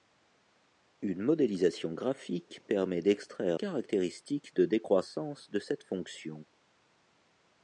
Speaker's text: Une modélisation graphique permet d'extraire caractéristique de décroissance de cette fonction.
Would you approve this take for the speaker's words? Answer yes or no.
yes